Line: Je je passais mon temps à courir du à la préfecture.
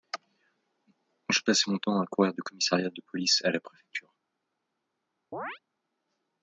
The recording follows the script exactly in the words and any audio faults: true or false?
false